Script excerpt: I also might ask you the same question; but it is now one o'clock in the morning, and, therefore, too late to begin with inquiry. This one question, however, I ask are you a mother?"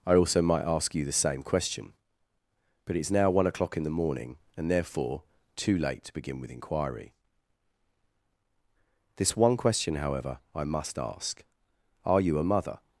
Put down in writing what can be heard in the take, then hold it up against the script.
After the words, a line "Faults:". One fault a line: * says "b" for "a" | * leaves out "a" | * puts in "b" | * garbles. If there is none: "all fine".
I also might ask you the same question; but it is now one o'clock in the morning, and, therefore, too late to begin with inquiry. This one question, however, I must ask are you a mother?"
Faults:
* puts in "must"